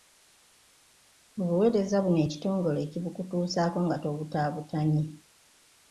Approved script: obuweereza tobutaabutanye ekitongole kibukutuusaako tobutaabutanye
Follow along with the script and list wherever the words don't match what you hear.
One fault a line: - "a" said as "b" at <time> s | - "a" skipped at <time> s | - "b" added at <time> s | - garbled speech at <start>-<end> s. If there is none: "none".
- "tobutaabutanye" said as "buno" at 2.0 s
- "nga" added at 3.9 s